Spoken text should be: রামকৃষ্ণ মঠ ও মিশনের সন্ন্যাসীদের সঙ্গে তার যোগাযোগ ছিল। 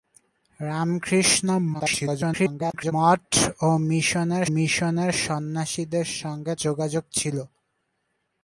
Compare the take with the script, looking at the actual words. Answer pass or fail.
fail